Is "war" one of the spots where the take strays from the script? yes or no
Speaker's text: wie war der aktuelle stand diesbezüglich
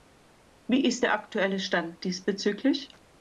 yes